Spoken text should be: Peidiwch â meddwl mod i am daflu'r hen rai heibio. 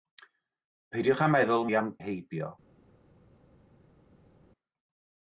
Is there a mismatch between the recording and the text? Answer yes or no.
yes